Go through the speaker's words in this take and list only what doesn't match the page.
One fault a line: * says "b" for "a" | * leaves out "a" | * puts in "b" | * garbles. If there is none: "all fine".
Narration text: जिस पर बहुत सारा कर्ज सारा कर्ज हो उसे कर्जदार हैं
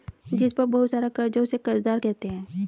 * leaves out "सारा कर्ज"
* puts in "कहते"